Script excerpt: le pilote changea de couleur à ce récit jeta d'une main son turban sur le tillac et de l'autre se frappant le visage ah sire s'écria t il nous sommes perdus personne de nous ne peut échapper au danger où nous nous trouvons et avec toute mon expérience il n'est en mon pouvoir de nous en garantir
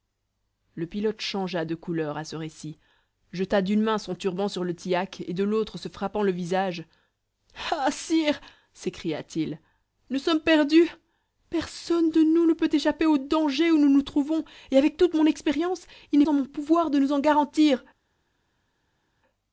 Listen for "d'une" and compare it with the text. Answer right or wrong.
right